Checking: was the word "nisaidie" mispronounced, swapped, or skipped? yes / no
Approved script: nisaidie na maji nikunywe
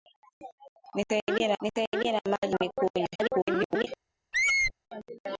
no